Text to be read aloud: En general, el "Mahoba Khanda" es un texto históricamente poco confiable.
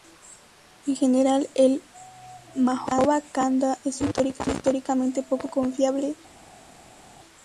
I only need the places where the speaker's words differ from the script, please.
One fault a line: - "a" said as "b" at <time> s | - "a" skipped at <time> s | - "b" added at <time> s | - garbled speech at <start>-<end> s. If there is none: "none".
none